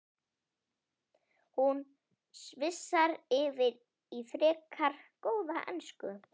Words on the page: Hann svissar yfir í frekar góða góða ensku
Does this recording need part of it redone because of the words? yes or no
yes